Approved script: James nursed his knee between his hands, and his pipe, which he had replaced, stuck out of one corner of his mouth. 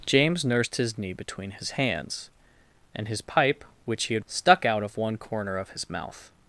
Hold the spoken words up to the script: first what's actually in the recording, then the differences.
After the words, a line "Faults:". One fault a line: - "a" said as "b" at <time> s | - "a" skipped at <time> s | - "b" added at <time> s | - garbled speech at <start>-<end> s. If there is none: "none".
James nursed his knee between his hands, and his pipe, which he had stuck out of one corner of his mouth.
Faults:
- "replaced" skipped at 4.2 s